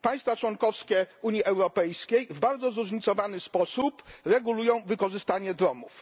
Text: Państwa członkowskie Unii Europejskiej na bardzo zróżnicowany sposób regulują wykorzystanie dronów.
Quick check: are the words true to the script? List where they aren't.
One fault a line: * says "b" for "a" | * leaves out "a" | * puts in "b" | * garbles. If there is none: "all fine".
* says "w" for "na"